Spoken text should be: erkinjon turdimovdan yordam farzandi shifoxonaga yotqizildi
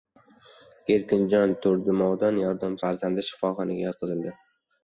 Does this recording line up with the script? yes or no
yes